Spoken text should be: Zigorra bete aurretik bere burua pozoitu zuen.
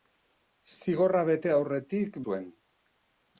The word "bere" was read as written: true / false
false